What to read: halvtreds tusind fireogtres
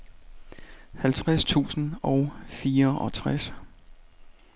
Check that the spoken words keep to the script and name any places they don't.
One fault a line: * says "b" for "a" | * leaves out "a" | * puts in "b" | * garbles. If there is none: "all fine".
* puts in "og"